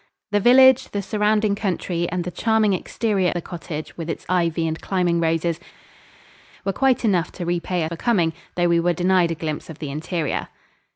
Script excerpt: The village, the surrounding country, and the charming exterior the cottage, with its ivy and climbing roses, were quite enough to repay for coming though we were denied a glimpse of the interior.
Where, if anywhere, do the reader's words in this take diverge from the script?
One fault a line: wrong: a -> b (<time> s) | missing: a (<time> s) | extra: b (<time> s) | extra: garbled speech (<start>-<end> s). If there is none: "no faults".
no faults